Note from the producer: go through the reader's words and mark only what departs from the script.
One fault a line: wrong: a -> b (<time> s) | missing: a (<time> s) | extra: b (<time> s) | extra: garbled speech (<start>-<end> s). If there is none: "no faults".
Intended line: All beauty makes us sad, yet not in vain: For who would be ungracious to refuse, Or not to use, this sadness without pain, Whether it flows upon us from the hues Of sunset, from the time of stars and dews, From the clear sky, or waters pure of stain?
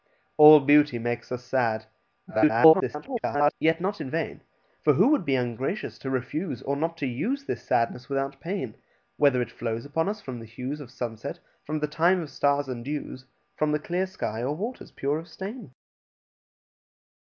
extra: garbled speech (2.3-3.5 s)